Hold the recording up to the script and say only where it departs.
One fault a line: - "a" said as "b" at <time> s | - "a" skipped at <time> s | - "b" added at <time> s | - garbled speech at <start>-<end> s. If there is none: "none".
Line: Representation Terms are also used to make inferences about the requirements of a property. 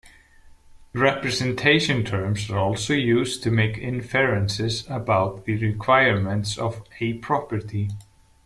none